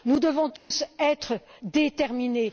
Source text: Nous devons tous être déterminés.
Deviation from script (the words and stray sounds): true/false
true